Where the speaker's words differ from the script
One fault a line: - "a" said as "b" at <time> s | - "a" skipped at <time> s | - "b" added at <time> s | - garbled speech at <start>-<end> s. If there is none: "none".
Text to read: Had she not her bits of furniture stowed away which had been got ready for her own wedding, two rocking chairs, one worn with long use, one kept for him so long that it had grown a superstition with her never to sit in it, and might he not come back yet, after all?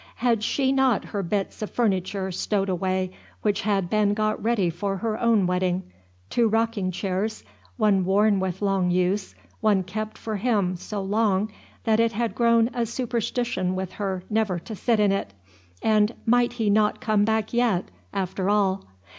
none